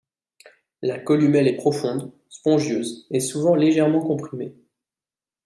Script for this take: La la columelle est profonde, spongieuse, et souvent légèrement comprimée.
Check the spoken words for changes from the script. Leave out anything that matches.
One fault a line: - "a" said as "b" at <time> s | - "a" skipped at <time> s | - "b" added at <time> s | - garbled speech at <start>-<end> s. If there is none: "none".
- "la" skipped at 1.0 s